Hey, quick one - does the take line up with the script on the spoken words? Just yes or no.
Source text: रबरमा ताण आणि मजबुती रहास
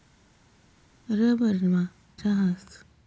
no